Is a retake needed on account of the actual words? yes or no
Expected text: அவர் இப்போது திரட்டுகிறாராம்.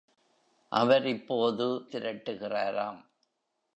no